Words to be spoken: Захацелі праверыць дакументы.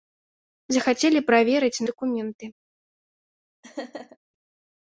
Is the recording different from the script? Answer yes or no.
no